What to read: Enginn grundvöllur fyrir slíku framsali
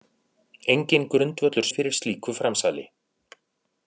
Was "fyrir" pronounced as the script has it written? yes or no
yes